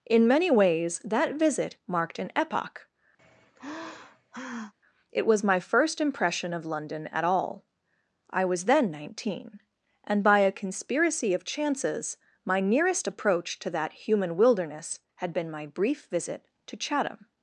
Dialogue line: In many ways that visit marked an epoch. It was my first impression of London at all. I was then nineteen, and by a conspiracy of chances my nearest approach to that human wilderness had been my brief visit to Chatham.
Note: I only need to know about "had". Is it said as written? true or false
true